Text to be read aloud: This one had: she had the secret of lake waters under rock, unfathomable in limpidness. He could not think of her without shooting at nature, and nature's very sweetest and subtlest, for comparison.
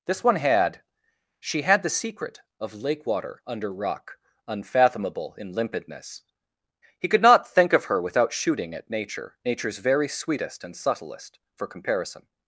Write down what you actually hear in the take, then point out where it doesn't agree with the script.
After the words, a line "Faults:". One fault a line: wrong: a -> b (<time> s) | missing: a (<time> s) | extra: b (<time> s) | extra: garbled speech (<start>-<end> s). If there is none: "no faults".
This one had: she had the secret of lake water under rock, unfathomable in limpidness. He could not think of her without shooting at nature, nature's very sweetest and subtlest, for comparison.
Faults:
wrong: waters -> water (3.0 s)
missing: and (9.4 s)